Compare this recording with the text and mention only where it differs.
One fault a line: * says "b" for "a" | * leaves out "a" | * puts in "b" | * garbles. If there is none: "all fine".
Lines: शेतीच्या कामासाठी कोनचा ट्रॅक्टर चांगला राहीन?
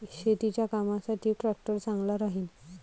* leaves out "कोनचा"